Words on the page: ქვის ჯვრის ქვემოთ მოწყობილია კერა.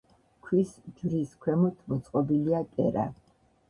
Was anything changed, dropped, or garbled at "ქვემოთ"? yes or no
no